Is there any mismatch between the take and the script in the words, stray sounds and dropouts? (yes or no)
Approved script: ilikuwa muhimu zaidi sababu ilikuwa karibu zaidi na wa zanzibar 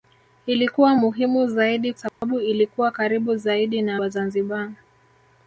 yes